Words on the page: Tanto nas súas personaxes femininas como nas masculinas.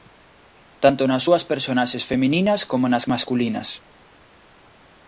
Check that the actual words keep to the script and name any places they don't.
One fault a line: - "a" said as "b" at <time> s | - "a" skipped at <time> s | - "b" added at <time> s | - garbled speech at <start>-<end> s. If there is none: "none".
none